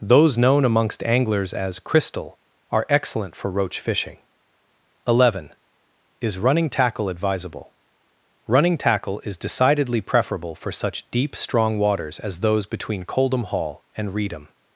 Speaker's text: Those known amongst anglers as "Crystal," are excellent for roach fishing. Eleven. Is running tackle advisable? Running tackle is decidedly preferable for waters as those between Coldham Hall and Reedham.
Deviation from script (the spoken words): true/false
true